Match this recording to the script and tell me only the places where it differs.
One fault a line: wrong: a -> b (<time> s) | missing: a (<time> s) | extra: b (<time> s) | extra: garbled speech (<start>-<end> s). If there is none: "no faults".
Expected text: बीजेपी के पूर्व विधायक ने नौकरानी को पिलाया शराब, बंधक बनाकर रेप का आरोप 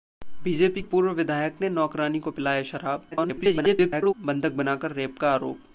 missing: के (0.8 s)
extra: garbled speech (3.1-4.1 s)